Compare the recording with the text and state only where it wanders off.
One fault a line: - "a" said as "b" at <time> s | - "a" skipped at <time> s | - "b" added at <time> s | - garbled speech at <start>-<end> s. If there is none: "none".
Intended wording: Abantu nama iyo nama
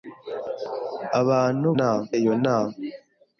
none